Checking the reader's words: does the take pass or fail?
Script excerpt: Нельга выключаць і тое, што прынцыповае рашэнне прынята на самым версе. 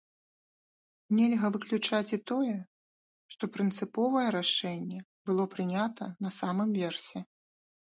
fail